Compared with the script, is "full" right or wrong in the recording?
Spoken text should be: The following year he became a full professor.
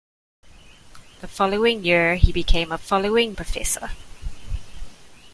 wrong